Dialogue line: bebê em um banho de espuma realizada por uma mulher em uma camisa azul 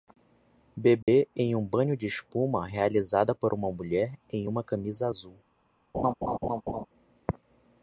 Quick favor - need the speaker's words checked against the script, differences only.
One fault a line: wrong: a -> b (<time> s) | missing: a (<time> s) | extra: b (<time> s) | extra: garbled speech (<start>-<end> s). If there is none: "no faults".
no faults